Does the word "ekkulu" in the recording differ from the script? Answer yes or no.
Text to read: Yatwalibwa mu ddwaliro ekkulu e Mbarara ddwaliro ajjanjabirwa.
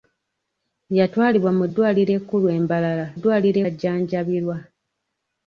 no